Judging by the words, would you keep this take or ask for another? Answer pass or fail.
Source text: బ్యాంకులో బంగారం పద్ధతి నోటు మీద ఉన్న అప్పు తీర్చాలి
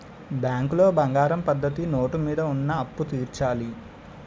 pass